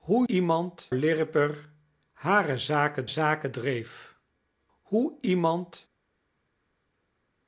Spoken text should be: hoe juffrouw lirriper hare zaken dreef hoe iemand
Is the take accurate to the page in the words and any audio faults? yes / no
no